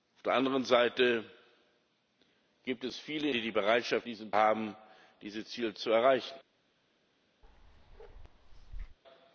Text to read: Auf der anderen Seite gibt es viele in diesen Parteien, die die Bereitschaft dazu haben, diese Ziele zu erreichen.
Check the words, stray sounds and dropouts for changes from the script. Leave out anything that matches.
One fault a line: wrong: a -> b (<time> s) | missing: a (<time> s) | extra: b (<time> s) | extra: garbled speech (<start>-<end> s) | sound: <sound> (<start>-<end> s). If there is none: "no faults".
missing: in diesen Parteien (3.3 s)
wrong: dazu -> diesen (4.0 s)
sound: bark (7.4-9.0 s)